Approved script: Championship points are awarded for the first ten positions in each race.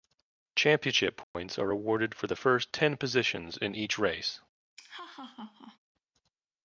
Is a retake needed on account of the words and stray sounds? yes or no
yes